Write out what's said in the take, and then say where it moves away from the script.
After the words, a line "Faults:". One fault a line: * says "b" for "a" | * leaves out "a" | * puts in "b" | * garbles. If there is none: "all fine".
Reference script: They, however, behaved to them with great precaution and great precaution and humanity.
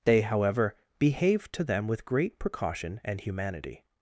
They, however, behaved to them with great precaution and humanity.
Faults:
* leaves out "great precaution and"